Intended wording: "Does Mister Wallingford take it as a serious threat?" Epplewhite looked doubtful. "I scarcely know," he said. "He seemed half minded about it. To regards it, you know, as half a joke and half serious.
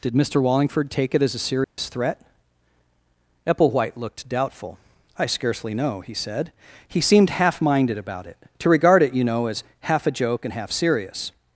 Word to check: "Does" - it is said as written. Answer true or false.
false